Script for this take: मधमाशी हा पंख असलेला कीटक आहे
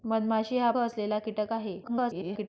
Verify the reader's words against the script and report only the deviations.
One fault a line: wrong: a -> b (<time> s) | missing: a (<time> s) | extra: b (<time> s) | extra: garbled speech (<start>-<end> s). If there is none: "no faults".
missing: पंख (0.7 s)
extra: garbled speech (1.8-2.5 s)